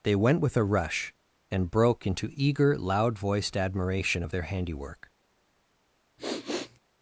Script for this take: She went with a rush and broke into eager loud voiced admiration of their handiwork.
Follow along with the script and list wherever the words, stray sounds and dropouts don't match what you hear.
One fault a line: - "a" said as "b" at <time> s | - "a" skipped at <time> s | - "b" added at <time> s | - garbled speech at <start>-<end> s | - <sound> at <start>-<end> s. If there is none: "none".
- "She" said as "They" at 0.0 s
- sniff at 6.2-6.8 s